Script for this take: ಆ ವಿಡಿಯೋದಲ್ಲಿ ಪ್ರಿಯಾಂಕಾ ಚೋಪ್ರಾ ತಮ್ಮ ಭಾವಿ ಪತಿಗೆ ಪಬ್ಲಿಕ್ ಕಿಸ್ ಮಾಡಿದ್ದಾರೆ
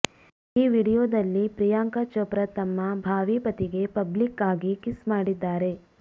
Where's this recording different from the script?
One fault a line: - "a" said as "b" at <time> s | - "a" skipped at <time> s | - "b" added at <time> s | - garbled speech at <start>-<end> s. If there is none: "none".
- "ಆ" said as "ಈ" at 0.6 s
- "ಆಗಿ" added at 4.5 s